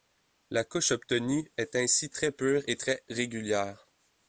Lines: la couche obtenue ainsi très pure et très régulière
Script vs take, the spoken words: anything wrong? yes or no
yes